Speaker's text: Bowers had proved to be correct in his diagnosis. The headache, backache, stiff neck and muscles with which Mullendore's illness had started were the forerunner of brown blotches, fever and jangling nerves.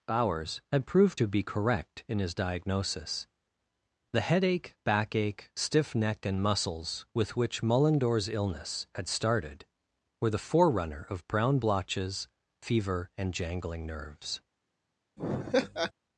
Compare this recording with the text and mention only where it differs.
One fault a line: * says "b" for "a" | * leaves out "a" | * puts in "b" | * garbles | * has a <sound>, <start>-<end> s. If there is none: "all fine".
* has a laugh, 15.2-15.9 s